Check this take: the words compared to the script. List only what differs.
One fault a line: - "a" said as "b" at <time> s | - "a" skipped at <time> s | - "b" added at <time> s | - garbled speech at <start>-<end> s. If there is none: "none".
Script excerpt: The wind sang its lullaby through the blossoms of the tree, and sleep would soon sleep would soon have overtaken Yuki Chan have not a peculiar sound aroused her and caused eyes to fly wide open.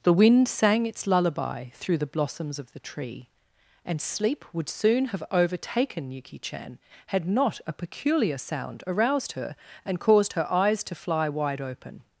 - "sleep would soon" skipped at 5.0 s
- "have" said as "had" at 7.1 s
- "her" added at 10.3 s